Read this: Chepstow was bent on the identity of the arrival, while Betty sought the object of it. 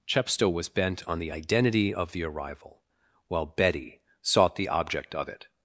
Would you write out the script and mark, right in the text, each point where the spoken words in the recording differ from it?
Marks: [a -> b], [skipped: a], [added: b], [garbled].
Chepstow was bent on the identity of the arrival, while Betty sought the object of it.